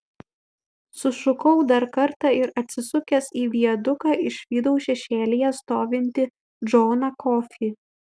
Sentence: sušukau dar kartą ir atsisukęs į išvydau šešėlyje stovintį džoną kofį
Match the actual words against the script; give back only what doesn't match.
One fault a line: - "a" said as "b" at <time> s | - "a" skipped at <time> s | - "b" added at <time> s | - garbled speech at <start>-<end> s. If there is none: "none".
- "viaduką" added at 3.6 s